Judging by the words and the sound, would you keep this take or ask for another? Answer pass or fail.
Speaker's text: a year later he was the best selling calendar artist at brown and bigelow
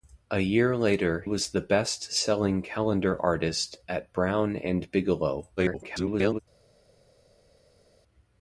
fail